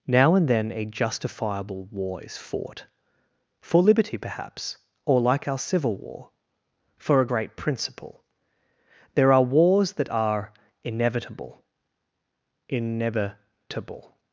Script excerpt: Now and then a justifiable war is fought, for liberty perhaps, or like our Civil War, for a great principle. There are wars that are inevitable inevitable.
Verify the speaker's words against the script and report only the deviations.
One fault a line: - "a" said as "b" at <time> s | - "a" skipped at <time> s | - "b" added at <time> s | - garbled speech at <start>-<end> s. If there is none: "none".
none